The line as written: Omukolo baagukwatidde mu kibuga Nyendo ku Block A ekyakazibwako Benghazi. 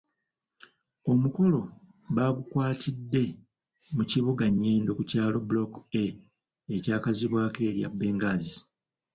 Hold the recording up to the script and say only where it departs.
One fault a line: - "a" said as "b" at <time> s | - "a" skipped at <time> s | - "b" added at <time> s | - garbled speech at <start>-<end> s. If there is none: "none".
- "kyalo" added at 5.1 s
- "erya" added at 7.7 s